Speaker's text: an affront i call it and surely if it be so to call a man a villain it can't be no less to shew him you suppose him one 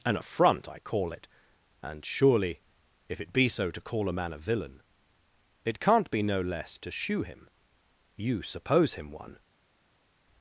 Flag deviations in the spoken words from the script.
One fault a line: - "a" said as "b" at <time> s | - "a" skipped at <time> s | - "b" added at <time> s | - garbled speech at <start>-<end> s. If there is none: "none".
none